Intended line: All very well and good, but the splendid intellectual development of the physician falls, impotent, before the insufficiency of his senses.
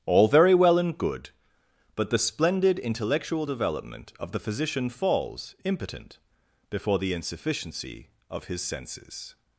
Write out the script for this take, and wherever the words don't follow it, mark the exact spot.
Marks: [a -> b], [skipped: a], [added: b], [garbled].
All very well and good, but the splendid intellectual development of the physician falls, impotent, before the insufficiency of his senses.